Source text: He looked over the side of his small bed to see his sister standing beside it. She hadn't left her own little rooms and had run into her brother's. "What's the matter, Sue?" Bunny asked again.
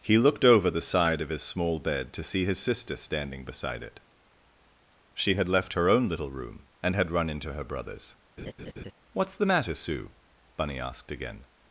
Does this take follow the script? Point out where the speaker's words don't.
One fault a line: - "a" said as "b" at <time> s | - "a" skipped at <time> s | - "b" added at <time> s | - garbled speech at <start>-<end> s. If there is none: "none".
- "hadn't" said as "had" at 5.3 s
- "rooms" said as "room" at 6.3 s